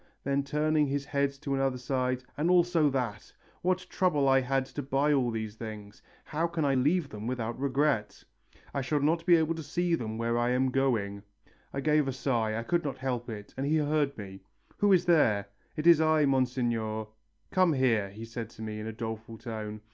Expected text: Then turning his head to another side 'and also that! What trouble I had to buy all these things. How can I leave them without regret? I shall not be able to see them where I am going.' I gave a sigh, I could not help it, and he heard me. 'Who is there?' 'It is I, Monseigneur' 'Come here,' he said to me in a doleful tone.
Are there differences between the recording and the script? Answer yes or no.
no